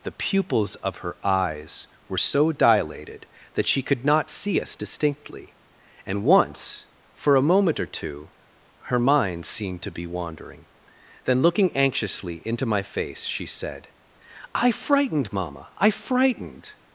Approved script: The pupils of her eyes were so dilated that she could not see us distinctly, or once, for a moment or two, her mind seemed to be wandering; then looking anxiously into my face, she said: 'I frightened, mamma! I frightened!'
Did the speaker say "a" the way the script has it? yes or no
yes